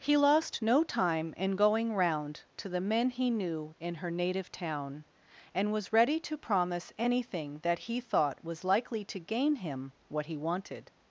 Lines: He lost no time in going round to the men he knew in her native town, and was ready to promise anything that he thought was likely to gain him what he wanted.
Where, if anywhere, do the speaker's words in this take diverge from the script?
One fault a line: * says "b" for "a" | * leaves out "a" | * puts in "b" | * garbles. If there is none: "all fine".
all fine